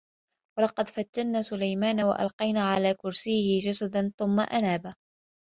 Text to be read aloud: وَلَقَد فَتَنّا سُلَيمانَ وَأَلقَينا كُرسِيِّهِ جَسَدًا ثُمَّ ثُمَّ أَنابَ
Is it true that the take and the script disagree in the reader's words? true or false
true